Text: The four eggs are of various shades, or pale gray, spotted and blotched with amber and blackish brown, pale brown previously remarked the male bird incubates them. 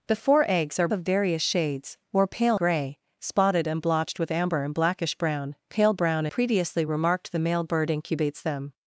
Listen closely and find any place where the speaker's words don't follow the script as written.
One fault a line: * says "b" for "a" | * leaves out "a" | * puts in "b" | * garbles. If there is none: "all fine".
all fine